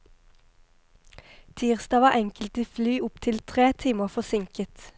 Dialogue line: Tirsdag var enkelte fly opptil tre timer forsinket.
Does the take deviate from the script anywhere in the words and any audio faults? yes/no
no